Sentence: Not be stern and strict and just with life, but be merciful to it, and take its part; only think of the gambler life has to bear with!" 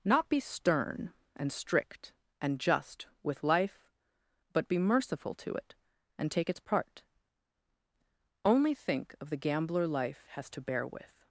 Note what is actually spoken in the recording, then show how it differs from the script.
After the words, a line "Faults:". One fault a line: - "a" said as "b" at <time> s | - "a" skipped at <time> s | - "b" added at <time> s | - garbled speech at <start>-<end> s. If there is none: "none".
Not be stern and strict and just with life, but be merciful to it, and take its part; only think of the gambler life has to bear with!"
Faults:
none